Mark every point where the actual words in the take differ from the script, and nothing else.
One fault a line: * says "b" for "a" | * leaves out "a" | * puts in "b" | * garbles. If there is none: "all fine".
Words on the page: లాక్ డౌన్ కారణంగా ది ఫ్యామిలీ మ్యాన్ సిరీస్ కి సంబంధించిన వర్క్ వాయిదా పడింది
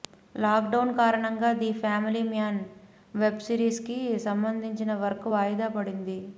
* puts in "వెబ్"